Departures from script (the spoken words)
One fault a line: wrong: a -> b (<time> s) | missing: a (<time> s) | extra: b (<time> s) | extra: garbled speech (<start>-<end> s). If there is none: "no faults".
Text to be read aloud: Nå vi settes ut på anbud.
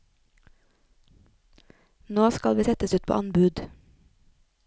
extra: skal (2.3 s)